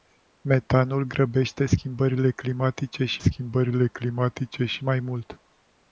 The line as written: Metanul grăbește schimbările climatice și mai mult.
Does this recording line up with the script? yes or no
no